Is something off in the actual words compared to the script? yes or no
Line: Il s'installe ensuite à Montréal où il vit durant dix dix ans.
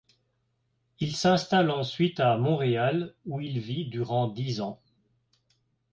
yes